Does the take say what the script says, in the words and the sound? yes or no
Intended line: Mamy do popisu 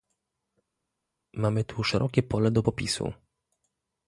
no